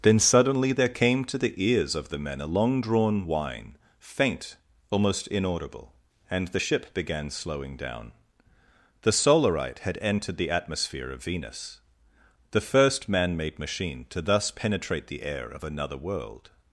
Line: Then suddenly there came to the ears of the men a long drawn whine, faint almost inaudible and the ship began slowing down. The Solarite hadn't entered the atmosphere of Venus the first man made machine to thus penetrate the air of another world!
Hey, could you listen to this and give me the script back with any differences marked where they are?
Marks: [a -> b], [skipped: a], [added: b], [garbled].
Then suddenly there came to the ears of the men a long drawn whine, faint almost inaudible and the ship began slowing down. The Solarite [hadn't -> had] entered the atmosphere of Venus the first man made machine to thus penetrate the air of another world!